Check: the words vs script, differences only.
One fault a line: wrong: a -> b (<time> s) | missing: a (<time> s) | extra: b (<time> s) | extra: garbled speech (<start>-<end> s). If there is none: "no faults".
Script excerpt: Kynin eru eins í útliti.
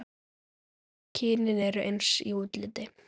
no faults